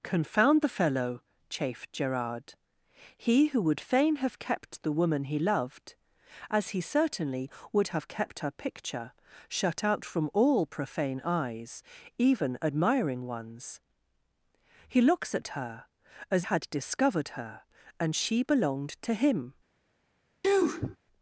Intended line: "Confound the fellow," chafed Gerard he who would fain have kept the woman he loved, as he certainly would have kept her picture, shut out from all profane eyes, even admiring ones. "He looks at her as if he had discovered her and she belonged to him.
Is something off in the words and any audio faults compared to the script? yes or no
yes